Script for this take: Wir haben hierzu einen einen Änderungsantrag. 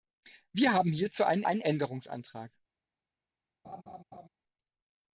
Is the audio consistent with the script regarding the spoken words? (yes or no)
yes